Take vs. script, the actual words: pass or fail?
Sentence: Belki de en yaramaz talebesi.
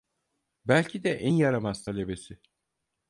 pass